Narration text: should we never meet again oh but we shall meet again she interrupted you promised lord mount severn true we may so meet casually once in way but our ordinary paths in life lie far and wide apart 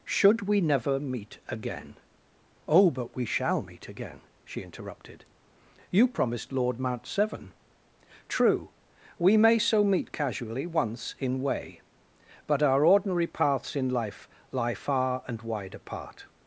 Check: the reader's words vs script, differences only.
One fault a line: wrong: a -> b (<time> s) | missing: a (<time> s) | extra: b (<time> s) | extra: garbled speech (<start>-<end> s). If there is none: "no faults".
no faults